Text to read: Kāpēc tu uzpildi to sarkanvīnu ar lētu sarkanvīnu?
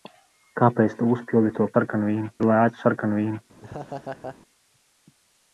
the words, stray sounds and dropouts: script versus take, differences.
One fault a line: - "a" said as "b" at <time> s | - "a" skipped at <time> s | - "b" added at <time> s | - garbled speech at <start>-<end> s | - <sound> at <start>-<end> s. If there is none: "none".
- laugh at 3.6-4.4 s